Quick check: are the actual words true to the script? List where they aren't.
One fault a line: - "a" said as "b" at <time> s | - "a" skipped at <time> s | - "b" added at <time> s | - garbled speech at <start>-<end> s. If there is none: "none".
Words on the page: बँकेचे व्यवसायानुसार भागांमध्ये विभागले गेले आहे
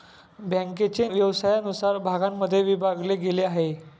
none